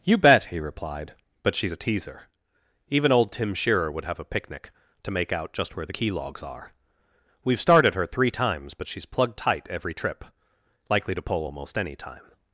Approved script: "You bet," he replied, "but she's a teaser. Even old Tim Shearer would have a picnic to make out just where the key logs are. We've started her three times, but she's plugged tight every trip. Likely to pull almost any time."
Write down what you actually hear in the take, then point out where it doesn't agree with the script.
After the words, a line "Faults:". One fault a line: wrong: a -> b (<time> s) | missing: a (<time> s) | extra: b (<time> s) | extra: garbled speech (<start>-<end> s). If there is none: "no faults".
"You bet," he replied, "but she's a teaser. Even old Tim Shearer would have a picnic to make out just where the key logs are. We've started her three times, but she's plugged tight every trip. Likely to pull almost any time."
Faults:
no faults